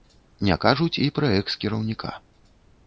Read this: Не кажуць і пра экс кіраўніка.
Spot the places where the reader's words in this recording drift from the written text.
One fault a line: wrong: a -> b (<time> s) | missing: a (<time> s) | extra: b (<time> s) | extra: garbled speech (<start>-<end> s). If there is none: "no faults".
no faults